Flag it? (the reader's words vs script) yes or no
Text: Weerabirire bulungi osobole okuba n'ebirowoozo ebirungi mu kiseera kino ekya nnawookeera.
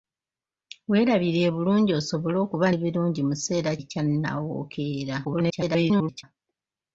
yes